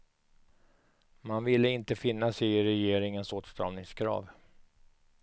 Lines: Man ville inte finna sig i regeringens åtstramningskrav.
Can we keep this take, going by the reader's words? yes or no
yes